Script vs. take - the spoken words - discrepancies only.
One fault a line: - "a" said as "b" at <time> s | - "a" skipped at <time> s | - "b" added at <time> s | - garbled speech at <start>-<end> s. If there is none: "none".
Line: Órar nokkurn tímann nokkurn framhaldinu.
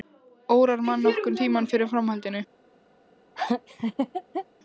- "mann" added at 0.9 s
- "nokkurn" said as "fyrir" at 1.7 s